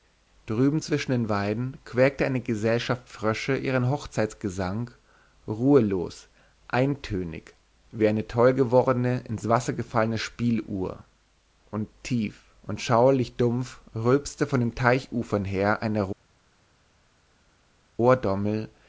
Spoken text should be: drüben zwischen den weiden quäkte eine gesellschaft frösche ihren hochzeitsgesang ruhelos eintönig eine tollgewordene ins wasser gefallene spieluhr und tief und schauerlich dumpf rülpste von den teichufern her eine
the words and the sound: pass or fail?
fail